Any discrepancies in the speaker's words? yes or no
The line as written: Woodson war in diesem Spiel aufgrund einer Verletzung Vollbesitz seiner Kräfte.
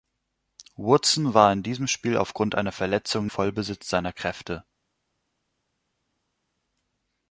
no